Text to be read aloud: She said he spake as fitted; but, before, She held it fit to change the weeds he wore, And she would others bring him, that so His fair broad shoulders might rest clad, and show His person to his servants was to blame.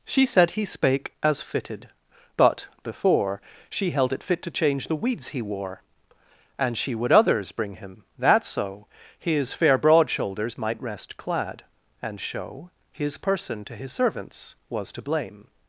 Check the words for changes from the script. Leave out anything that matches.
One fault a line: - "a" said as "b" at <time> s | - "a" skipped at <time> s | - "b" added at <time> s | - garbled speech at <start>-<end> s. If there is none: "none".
none